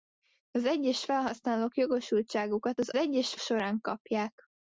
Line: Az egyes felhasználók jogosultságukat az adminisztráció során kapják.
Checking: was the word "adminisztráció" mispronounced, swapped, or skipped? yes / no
yes